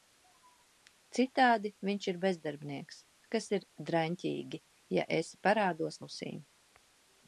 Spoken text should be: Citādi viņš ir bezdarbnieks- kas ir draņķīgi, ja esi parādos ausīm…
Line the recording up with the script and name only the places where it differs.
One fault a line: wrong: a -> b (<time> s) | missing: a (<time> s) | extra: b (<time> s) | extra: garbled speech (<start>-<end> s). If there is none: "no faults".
no faults